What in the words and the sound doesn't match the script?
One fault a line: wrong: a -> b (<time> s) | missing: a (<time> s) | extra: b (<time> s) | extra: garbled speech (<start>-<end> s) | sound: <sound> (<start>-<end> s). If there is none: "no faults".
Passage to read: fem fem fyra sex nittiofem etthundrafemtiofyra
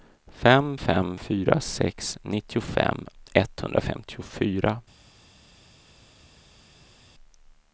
no faults